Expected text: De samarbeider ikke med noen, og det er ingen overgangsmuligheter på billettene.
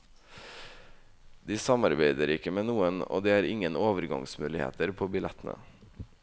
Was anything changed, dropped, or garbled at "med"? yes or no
no